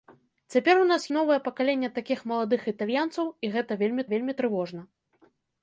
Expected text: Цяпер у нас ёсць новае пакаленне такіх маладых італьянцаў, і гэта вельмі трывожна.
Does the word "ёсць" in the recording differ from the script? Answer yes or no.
yes